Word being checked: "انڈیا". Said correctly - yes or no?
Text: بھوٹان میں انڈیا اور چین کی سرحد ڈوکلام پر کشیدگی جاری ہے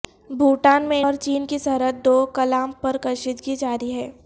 no